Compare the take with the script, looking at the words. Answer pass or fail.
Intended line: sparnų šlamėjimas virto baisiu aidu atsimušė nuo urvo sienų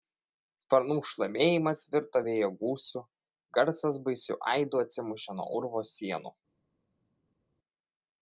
fail